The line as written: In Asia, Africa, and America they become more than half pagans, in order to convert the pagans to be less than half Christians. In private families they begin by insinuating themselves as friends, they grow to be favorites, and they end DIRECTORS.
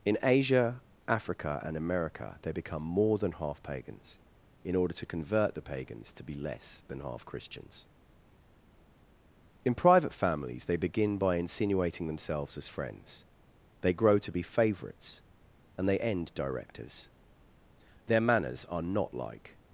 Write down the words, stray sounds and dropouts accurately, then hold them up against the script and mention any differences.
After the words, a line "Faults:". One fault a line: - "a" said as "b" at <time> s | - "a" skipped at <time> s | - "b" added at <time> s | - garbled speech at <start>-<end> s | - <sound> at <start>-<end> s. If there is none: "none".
In Asia, Africa, and America they become more than half pagans, in order to convert the pagans to be less than half Christians. In private families they begin by insinuating themselves as friends, they grow to be favorites, and they end DIRECTORS. Their manners are not like
Faults:
- "Their manners are not like" added at 18.1 s